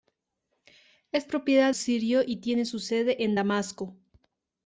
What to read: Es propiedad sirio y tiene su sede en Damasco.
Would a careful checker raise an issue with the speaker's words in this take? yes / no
no